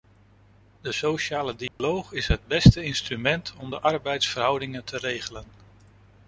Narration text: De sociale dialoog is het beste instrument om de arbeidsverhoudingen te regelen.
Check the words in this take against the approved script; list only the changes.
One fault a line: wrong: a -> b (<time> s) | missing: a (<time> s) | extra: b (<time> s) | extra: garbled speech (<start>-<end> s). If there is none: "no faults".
no faults